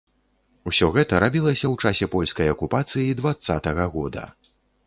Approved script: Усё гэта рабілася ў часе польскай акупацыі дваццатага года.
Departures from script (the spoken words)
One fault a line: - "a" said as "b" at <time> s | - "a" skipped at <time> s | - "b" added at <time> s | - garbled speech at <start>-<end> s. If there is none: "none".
none